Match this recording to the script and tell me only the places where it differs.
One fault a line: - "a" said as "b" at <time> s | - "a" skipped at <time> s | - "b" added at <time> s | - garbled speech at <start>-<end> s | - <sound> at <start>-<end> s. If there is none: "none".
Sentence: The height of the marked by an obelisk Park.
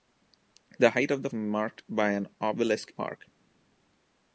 none